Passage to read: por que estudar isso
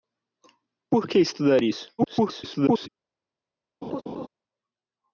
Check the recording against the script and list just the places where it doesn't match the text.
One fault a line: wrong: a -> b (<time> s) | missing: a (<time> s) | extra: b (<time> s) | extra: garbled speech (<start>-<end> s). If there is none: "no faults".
extra: garbled speech (2.0-2.9 s)